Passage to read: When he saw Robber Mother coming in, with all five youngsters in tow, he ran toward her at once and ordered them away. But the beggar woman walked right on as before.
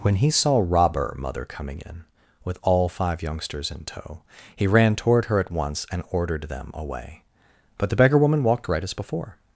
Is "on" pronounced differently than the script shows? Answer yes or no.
yes